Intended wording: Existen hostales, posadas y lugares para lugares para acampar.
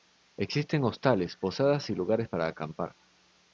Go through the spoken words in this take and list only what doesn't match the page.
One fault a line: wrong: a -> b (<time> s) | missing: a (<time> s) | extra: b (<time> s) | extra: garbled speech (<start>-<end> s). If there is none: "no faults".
missing: lugares para (2.5 s)